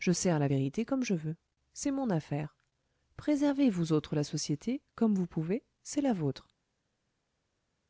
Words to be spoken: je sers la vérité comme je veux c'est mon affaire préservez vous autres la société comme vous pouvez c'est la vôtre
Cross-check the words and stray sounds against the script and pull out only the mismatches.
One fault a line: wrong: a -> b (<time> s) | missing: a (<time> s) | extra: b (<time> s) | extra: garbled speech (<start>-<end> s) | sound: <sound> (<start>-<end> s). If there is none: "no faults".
no faults